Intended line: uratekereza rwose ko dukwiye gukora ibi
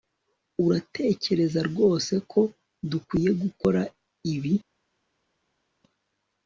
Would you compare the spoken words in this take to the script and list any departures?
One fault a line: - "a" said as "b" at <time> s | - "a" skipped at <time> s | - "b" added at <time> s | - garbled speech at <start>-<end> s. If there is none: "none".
none